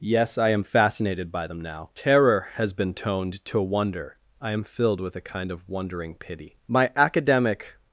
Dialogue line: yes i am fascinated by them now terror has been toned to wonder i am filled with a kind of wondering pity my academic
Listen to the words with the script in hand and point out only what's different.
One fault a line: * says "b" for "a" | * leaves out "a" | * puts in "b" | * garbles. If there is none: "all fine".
all fine